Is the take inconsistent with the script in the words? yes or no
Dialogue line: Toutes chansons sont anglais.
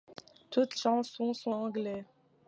no